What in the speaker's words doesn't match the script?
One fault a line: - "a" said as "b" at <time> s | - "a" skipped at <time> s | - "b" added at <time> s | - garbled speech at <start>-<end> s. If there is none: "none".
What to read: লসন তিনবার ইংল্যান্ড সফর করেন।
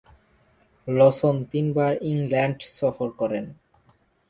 none